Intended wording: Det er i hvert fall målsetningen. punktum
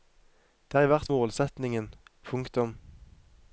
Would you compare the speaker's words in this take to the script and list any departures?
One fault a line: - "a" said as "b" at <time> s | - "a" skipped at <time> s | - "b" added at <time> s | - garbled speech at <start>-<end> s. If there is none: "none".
- "fall" skipped at 1.1 s